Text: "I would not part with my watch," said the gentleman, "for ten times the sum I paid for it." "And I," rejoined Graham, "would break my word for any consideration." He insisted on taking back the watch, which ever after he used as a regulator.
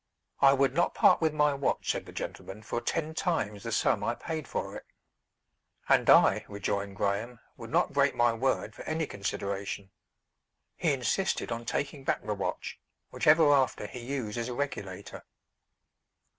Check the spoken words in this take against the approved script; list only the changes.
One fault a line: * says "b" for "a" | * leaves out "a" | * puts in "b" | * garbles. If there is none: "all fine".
* puts in "not"